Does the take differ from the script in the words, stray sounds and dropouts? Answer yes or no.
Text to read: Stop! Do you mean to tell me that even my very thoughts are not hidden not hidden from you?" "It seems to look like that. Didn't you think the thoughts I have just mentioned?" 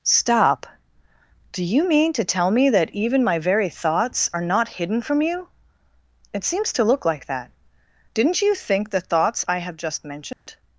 yes